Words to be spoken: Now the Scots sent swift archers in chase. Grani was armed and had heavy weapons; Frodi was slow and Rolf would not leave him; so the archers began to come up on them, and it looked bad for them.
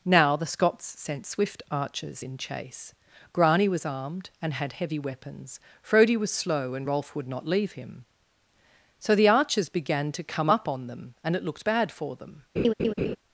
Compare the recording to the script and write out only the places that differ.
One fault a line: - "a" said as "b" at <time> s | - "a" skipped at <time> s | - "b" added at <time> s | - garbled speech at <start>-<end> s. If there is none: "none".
none